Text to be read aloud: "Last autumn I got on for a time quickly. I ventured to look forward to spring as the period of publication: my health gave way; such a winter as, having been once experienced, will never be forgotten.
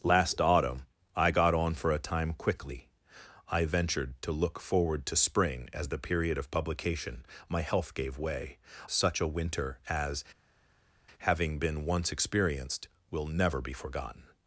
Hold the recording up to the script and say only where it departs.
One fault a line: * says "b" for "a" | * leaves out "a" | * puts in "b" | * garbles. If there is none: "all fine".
all fine